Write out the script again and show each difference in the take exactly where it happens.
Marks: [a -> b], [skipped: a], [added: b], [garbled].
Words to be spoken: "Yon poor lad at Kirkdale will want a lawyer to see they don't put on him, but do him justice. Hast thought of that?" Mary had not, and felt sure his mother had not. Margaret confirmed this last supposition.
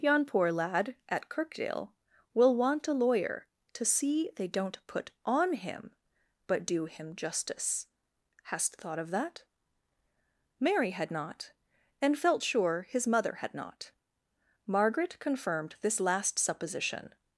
"Yon poor lad at Kirkdale will want a lawyer to see they don't put on him, but do him justice. Hast thought of that?" Mary had not, and felt sure his mother had not. Margaret confirmed this last supposition.